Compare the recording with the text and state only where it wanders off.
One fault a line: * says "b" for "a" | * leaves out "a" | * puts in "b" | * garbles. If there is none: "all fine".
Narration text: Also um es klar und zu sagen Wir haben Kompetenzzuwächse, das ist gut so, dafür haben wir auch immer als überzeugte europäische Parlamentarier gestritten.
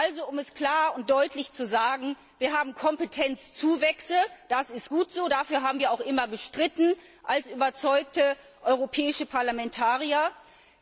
* puts in "deutlich"